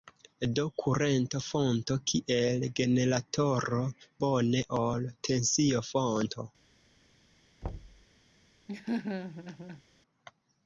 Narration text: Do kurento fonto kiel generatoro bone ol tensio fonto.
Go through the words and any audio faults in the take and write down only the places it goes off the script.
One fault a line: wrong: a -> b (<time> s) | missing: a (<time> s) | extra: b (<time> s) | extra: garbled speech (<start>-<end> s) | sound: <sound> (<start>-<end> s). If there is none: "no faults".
sound: thud (7.6-8.1 s)
sound: laugh (8.7-9.8 s)